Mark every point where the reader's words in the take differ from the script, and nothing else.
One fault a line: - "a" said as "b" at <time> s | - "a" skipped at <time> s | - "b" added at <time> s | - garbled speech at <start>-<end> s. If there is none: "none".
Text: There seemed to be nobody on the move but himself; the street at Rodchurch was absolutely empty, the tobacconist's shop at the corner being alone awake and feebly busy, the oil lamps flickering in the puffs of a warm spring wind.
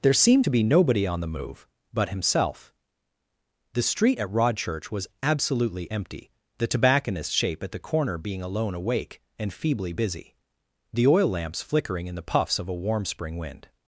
- "shop" said as "shape" at 7.3 s